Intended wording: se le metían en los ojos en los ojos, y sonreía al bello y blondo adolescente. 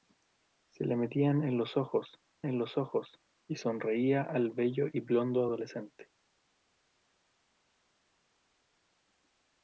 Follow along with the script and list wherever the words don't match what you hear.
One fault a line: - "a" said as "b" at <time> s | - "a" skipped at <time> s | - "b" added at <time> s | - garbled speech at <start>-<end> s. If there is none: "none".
none